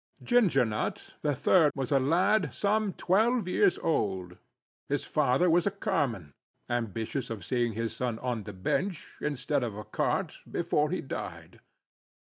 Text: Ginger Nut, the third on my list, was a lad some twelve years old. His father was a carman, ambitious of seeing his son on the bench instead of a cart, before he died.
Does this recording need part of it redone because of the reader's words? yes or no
yes